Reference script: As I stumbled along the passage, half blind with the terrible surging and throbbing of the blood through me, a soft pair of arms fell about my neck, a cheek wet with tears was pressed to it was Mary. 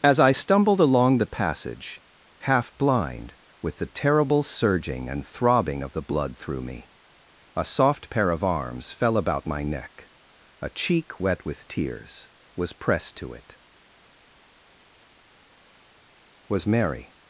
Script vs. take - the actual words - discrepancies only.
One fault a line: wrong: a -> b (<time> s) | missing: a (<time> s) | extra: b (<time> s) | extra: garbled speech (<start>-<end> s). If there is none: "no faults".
no faults